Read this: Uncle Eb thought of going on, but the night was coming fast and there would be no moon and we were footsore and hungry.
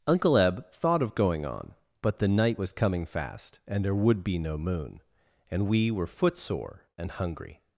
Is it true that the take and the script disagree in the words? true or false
false